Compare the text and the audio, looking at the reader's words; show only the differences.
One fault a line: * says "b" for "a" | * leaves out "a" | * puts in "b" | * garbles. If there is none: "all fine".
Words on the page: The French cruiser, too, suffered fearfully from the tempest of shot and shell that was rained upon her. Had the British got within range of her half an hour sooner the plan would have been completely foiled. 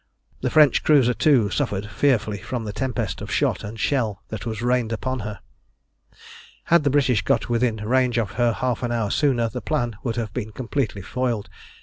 all fine